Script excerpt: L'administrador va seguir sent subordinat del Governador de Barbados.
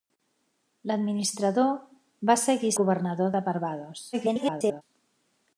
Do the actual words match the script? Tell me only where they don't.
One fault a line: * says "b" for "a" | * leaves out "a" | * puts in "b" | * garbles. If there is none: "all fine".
* leaves out "sent subordinat del"
* garbles